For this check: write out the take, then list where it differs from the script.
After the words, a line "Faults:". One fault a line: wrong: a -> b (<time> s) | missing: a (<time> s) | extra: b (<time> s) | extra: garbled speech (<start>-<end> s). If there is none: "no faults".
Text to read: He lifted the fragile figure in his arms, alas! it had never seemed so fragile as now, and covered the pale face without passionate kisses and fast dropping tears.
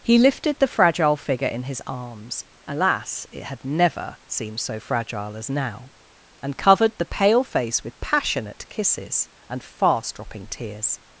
He lifted the fragile figure in his arms, alas! it had never seemed so fragile as now, and covered the pale face with passionate kisses and fast dropping tears.
Faults:
wrong: without -> with (7.8 s)